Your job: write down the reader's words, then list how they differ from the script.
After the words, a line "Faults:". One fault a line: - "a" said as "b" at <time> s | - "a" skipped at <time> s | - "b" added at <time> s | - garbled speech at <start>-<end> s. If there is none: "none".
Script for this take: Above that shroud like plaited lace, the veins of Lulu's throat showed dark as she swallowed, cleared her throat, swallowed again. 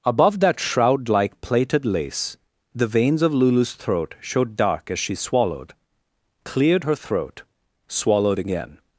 Above that shroud like plaited lace, the veins of Lulu's throat showed dark as she swallowed, cleared her throat, swallowed again.
Faults:
none